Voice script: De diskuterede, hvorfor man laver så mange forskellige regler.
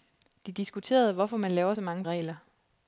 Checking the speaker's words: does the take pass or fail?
fail